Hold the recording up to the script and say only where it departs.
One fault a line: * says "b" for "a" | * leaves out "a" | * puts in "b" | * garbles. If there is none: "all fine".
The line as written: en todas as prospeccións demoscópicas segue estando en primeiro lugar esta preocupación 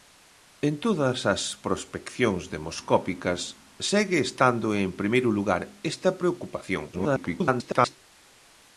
* garbles